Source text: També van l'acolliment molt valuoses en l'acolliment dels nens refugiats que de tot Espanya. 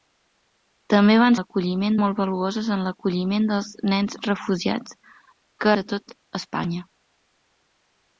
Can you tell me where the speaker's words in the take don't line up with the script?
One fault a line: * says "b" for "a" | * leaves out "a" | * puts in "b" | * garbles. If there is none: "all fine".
all fine